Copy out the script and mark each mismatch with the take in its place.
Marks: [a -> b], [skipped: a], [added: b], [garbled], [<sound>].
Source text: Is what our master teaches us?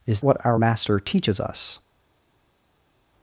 Is what our master teaches us?